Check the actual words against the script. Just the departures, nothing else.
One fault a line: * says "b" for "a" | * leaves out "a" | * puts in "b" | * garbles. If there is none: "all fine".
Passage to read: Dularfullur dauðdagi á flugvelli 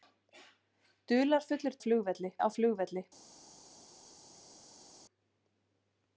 * says "flugvelli" for "dauðdagi"